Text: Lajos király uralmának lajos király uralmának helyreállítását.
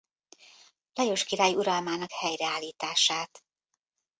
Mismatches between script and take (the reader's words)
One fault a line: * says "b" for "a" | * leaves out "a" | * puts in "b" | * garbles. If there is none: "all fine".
* leaves out "lajos király uralmának"